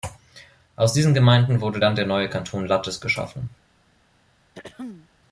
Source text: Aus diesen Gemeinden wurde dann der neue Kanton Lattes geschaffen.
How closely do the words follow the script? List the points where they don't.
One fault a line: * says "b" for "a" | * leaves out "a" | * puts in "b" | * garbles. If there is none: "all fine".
all fine